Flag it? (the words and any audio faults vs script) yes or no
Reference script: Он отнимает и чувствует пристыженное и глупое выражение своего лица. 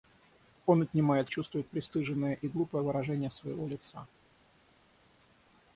no